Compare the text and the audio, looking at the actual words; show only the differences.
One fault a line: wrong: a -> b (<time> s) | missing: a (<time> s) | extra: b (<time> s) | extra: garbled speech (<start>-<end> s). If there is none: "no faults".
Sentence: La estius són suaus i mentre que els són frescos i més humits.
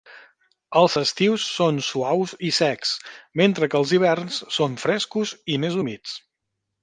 wrong: La -> Els (0.8 s)
extra: secs (2.6 s)
extra: hiverns (4.0 s)